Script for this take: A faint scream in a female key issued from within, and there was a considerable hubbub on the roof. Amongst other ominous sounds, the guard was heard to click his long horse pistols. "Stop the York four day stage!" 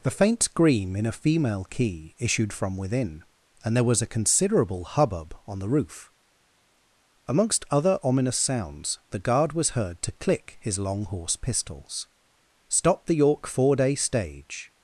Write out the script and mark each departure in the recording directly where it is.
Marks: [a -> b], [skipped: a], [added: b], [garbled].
[A -> The] faint scream in a female key issued from within, and there was a considerable hubbub on the roof. Amongst other ominous sounds, the guard was heard to click his long horse pistols. "Stop the York four day stage!"